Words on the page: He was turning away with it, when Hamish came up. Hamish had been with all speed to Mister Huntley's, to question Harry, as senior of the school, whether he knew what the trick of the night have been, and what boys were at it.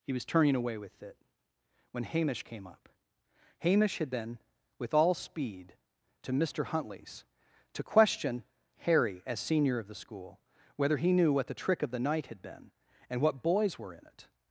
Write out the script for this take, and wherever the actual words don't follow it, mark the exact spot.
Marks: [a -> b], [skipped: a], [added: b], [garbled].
He was turning away with it, when Hamish came up. Hamish had been with all speed to Mister Huntley's, to question Harry, as senior of the school, whether he knew what the trick of the night [have -> had] been, and what boys were [at -> in] it.